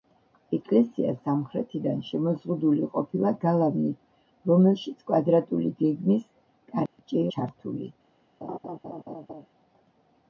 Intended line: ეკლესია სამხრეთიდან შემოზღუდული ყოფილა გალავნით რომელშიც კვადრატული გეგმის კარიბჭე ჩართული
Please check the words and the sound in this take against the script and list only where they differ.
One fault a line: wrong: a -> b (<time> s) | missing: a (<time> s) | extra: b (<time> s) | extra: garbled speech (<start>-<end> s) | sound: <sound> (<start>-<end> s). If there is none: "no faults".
sound: dropout (6.9-7.0 s)
sound: laugh (8.4-9.5 s)